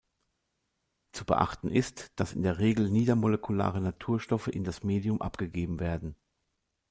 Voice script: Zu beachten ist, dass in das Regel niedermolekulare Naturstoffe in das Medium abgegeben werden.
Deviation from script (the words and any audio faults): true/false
true